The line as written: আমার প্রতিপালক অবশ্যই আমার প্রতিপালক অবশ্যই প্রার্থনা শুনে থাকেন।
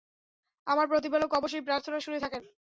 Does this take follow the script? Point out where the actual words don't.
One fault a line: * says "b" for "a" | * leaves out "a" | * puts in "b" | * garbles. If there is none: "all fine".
* leaves out "আমার প্রতিপালক অবশ্যই"